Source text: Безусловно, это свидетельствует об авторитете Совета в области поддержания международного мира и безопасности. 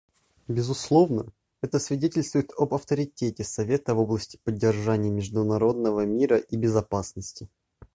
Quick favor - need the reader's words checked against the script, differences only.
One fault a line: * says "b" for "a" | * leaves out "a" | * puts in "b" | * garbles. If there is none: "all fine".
all fine